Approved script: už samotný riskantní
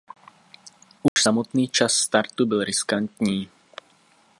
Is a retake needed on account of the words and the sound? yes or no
yes